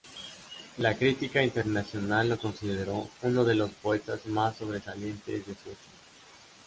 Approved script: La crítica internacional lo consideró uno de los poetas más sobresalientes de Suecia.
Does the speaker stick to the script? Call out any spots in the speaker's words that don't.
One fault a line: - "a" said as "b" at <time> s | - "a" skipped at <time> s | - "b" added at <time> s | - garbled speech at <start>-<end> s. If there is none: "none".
none